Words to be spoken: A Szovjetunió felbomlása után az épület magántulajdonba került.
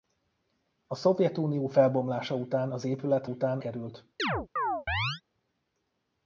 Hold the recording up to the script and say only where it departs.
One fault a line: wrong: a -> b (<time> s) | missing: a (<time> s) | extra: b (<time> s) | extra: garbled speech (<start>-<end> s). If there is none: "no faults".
wrong: magántulajdonba -> után (3.2 s)